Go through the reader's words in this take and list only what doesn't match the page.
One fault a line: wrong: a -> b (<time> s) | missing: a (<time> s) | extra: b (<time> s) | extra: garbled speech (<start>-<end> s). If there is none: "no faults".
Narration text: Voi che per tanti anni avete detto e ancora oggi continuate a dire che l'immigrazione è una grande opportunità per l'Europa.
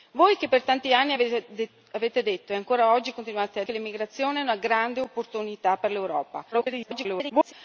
missing: dire (3.6 s)
extra: garbled speech (6.5-7.5 s)